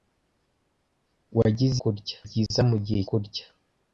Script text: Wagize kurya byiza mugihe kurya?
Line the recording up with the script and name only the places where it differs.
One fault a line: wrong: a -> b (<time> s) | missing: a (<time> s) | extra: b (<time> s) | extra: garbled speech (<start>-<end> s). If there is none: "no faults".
no faults